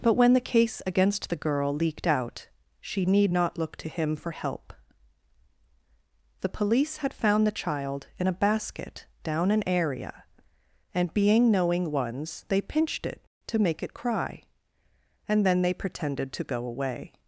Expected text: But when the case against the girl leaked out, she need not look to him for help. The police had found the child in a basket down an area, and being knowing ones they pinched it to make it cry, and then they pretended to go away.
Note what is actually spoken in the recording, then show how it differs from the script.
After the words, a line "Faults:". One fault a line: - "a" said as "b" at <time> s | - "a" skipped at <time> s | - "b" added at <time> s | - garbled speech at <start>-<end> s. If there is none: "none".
But when the case against the girl leaked out, she need not look to him for help. The police had found the child in a basket down an area, and being knowing ones they pinched it to make it cry, and then they pretended to go away.
Faults:
none